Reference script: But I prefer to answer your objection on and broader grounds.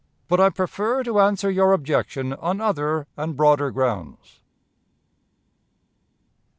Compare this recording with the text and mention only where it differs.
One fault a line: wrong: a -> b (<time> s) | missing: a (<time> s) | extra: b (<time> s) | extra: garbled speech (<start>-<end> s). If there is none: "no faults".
extra: other (2.6 s)